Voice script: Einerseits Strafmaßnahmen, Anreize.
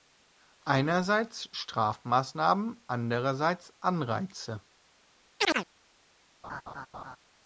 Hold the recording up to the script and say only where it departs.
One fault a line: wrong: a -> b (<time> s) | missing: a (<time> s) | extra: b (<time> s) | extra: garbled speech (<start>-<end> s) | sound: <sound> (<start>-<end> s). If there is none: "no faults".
extra: andererseits (2.9 s)
sound: chirp (5.4-5.7 s)
sound: laugh (6.4-7.2 s)